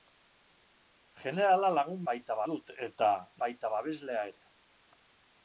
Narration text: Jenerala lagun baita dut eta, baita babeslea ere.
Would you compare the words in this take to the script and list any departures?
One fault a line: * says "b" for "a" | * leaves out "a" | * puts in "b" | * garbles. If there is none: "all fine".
all fine